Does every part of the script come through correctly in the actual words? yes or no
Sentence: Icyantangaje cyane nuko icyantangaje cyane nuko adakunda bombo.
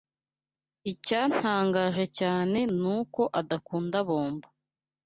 no